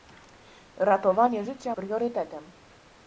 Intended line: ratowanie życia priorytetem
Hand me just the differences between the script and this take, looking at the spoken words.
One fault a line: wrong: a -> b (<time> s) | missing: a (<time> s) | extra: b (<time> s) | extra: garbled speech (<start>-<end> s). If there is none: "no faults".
no faults